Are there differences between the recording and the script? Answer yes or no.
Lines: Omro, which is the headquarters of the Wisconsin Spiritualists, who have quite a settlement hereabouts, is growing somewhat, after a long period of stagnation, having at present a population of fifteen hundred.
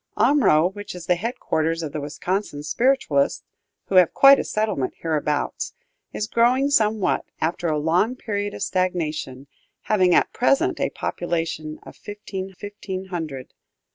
yes